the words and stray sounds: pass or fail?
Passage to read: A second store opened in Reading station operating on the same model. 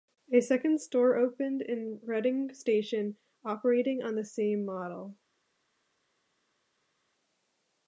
pass